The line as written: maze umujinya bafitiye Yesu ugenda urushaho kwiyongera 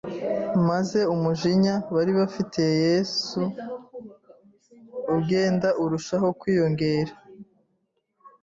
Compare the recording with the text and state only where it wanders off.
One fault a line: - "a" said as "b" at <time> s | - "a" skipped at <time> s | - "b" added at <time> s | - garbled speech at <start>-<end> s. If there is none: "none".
- "bari" added at 1.9 s